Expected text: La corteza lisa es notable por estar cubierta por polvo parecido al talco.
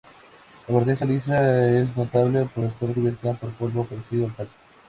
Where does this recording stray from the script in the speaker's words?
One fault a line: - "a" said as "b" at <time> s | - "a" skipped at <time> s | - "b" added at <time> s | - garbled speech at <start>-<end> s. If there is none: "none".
none